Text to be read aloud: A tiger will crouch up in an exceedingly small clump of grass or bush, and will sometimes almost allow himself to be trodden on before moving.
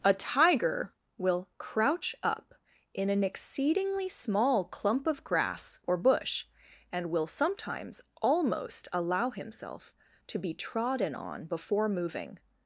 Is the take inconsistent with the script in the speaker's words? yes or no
no